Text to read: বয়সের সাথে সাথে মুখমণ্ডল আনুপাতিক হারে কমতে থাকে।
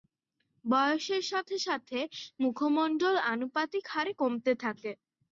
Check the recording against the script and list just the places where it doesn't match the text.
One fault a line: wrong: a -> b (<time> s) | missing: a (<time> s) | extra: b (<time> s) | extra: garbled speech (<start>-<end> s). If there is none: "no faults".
no faults